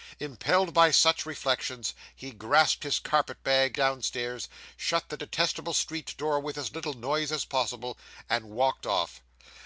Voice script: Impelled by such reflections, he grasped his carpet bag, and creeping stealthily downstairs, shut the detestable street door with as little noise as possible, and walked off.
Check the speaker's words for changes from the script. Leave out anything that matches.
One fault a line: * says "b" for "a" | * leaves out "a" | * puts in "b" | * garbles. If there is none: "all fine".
* leaves out "and creeping stealthily"